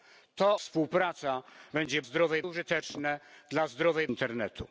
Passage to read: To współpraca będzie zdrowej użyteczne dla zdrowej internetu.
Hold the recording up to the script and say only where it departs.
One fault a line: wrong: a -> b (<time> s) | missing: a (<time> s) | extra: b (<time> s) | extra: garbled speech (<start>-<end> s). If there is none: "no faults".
no faults